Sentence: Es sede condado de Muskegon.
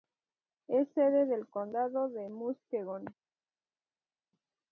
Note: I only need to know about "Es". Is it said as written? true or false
true